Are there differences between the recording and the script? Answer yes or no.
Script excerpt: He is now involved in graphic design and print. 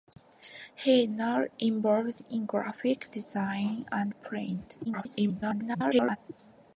yes